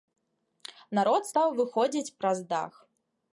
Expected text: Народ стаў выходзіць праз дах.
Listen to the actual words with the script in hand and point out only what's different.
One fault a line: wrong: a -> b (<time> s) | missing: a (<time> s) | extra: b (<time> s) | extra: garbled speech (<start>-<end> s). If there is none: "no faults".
no faults